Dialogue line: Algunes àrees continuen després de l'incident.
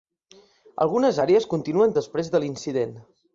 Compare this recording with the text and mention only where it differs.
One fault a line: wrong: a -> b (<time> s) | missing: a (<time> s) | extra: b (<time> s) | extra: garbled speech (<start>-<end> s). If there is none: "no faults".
no faults